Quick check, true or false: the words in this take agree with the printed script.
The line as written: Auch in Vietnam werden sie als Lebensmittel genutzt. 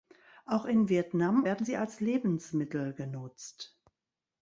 true